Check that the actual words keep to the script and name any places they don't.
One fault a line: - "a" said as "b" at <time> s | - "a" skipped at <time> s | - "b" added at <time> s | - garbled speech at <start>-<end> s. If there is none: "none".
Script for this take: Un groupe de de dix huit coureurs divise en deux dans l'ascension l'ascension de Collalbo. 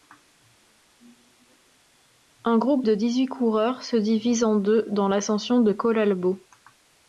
- "de" skipped at 2.9 s
- "se" added at 3.8 s
- "l'ascension" skipped at 5.6 s